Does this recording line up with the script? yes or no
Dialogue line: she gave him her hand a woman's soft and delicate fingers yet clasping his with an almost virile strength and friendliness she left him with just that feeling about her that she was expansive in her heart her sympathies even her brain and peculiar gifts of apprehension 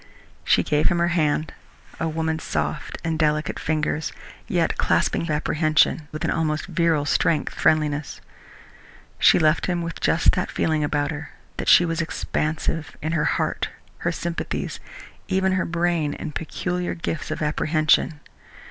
no